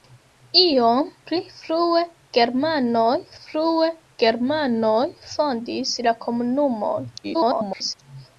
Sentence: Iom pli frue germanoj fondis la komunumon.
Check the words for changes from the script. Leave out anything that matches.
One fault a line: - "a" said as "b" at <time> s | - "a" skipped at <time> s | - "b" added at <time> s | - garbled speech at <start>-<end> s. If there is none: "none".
- "frue germanoj" added at 3.4 s
- garbled speech at 7.2-7.9 s